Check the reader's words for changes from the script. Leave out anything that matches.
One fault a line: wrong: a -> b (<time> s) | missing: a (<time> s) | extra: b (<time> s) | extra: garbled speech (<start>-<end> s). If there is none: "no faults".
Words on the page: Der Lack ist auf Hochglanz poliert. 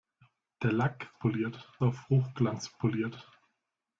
wrong: ist -> poliert (1.1 s)